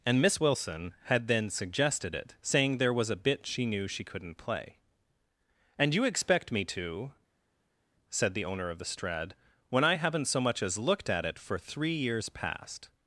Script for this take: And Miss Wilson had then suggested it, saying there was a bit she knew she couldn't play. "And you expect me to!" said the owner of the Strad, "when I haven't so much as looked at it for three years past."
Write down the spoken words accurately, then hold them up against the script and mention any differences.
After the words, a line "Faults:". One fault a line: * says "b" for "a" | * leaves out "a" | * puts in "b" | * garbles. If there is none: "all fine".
And Miss Wilson had then suggested it, saying there was a bit she knew she couldn't play. "And you expect me to!" said the owner of the Strad, "when I haven't so much as looked at it for three years past."
Faults:
all fine